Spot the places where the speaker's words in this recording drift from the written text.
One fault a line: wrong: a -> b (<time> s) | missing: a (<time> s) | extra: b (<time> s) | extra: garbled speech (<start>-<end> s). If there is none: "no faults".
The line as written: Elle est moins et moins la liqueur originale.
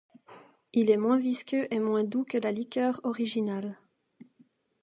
wrong: Elle -> Il (0.7 s)
extra: visqueux (1.2 s)
extra: doux que (2.0 s)